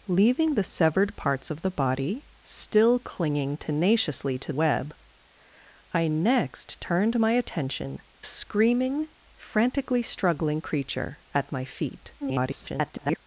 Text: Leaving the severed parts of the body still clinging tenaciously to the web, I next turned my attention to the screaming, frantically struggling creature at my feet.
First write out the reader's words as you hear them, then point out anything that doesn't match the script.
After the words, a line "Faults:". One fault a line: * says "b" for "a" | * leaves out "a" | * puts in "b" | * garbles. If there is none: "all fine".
Leaving the severed parts of the body still clinging tenaciously to web, I next turned my attention screaming, frantically struggling creature at my feet. [garbled]
Faults:
* leaves out "the"
* leaves out "to the"
* garbles